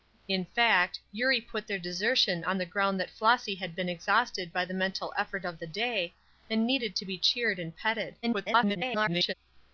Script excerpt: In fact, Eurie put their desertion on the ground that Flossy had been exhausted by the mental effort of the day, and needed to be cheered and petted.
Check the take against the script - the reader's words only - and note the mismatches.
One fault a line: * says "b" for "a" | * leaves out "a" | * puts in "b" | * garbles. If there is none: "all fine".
* garbles